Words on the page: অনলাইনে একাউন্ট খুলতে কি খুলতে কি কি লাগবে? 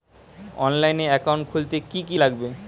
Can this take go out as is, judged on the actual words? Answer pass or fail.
fail